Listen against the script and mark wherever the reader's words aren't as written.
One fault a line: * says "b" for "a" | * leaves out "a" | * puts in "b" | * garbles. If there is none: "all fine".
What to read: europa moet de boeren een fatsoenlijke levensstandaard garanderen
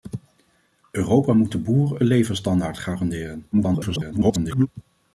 * leaves out "een fatsoenlijke"
* garbles